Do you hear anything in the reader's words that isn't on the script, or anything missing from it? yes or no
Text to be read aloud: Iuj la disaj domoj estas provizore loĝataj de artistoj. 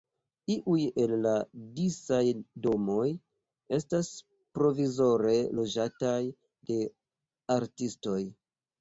yes